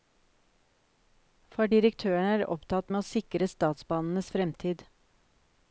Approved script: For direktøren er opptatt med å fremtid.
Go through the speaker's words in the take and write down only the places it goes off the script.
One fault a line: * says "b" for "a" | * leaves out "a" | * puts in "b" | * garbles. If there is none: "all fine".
* puts in "sikre statsbanenes"